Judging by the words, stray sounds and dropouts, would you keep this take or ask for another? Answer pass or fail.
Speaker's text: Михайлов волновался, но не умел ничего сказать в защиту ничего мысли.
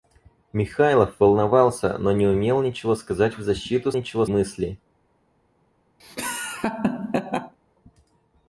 fail